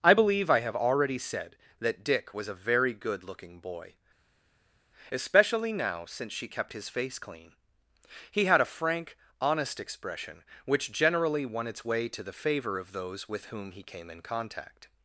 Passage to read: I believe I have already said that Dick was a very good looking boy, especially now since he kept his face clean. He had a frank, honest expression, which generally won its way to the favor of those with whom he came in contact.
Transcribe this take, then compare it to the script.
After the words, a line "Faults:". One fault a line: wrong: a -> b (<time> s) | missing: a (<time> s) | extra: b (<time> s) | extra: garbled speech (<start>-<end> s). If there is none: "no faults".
I believe I have already said that Dick was a very good looking boy, especially now since she kept his face clean. He had a frank, honest expression, which generally won its way to the favor of those with whom he came in contact.
Faults:
wrong: he -> she (6.3 s)